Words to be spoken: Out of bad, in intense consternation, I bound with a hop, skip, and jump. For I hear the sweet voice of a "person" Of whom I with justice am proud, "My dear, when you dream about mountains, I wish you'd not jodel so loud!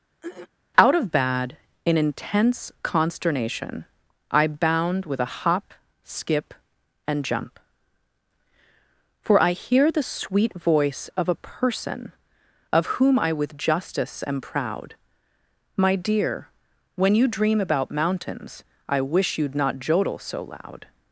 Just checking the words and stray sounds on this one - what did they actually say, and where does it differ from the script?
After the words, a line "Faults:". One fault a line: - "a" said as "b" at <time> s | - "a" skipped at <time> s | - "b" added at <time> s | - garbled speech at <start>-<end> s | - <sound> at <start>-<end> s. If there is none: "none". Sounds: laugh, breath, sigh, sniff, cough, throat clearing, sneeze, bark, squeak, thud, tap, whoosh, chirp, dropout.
Out of bad, in intense consternation, I bound with a hop, skip, and jump. For I hear the sweet voice of a "person" Of whom I with justice am proud, "My dear, when you dream about mountains, I wish you'd not jodel so loud!
Faults:
- throat clearing at 0.2-0.5 s